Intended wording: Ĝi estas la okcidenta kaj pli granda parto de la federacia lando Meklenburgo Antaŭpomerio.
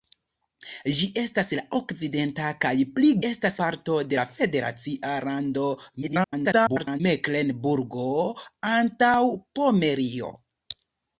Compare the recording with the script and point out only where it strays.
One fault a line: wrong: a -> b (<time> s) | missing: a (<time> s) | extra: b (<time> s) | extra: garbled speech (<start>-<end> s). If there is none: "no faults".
wrong: granda -> estas (3.3 s)
extra: garbled speech (6.0-7.0 s)